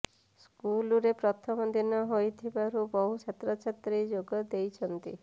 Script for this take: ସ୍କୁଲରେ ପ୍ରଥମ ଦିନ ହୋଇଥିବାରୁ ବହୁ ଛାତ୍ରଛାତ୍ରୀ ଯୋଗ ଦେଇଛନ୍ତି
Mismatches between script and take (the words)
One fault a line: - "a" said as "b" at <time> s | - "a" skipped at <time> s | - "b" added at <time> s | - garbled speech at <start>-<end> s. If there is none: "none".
none